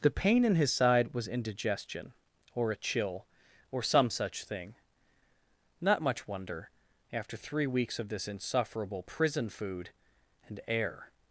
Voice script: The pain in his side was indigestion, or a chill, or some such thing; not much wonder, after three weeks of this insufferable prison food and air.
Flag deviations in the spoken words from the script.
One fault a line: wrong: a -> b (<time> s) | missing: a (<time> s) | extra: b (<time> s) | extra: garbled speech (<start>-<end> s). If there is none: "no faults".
no faults